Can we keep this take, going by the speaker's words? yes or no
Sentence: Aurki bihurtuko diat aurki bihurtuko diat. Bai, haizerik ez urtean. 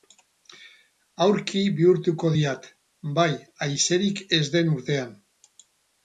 no